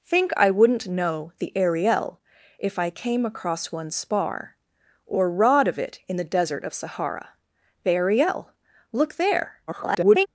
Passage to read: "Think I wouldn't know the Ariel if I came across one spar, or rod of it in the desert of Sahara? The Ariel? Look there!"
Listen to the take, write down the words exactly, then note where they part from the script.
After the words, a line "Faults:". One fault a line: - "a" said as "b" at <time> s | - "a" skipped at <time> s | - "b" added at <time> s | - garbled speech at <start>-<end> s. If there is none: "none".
"Think I wouldn't know the Ariel if I came across one spar, or rod of it in the desert of Sahara? The Ariel? Look there!" [garbled]
Faults:
- garbled speech at 9.7-10.3 s